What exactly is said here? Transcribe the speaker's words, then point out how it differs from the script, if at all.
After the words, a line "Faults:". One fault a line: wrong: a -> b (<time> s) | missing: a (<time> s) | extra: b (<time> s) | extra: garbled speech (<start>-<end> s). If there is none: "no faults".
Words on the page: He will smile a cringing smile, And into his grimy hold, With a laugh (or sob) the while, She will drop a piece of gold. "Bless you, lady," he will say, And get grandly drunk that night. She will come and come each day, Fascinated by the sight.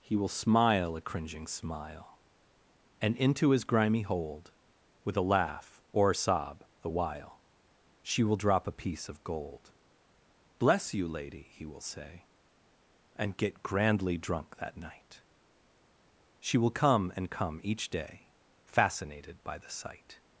He will smile a cringing smile, And into his grimy hold, With a laugh (or a sob) the while, She will drop a piece of gold. "Bless you, lady," he will say, And get grandly drunk that night. She will come and come each day, Fascinated by the sight.
Faults:
extra: a (6.1 s)